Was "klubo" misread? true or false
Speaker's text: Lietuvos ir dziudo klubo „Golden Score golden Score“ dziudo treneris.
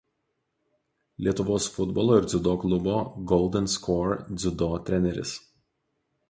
false